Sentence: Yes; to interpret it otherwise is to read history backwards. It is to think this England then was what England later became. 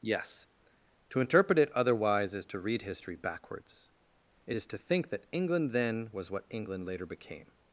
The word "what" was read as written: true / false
true